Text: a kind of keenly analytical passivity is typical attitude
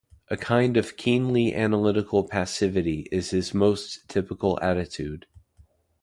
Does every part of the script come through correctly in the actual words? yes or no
no